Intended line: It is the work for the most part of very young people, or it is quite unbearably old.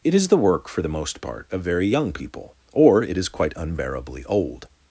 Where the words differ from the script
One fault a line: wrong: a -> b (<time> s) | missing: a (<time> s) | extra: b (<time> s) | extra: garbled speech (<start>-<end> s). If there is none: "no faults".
no faults